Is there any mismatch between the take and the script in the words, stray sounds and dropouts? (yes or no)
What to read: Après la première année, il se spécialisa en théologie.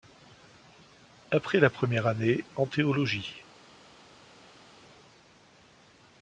yes